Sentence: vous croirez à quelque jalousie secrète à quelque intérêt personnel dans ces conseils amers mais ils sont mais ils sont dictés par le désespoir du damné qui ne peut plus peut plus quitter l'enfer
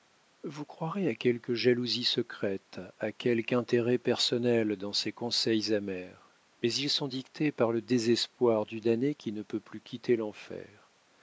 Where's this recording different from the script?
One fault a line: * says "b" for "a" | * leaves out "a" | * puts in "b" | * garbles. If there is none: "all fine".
* leaves out "mais ils sont"
* leaves out "peut plus"